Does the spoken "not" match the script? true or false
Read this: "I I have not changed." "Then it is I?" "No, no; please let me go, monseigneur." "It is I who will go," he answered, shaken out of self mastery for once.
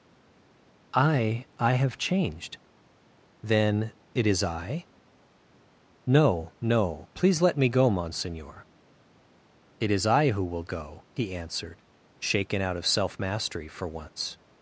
false